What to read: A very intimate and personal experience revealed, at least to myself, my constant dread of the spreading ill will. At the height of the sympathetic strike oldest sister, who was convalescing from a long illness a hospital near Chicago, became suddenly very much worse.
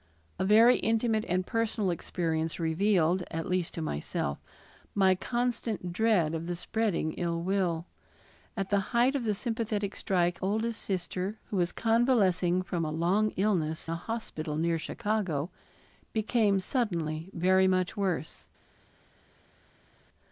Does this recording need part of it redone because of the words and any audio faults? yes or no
no